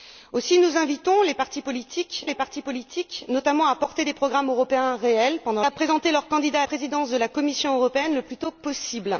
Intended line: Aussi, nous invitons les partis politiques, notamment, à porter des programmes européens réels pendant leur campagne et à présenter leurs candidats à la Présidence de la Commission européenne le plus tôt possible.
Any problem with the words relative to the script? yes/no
yes